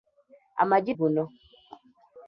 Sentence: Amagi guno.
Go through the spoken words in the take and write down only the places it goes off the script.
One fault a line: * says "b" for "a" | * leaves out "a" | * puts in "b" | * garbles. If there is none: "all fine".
all fine